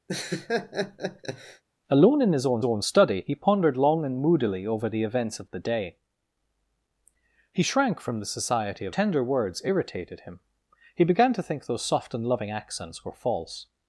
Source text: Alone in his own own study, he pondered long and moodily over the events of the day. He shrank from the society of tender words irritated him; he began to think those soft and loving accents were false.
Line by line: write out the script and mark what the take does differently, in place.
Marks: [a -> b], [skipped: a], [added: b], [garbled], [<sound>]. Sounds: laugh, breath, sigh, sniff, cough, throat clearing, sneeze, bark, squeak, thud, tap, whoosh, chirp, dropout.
[laugh] Alone in his own own study, he pondered long and moodily over the events of the day. He shrank from the society of tender words irritated him; he began to think those soft and loving accents were false.